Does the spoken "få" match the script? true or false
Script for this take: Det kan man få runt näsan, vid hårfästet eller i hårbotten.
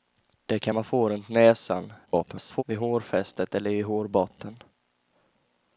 true